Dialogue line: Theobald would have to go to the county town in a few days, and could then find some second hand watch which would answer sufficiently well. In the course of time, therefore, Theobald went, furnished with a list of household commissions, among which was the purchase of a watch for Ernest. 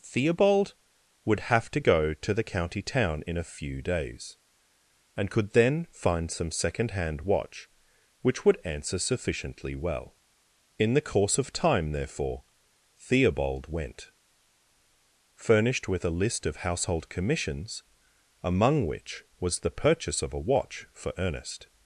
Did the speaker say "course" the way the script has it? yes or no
yes